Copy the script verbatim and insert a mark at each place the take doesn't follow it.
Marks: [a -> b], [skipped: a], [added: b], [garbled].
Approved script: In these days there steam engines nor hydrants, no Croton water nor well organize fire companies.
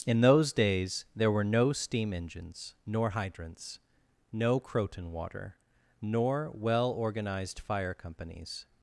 In [these -> those] days there [added: were no] steam engines nor hydrants, no Croton water nor well [organize -> organized] fire companies.